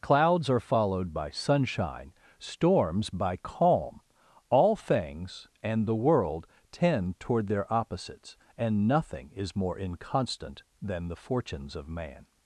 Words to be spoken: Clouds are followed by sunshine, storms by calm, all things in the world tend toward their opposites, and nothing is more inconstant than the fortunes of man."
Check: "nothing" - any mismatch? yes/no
no